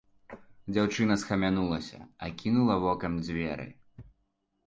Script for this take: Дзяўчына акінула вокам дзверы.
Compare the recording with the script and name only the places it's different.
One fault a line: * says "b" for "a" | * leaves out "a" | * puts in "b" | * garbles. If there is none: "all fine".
* puts in "схамянулася"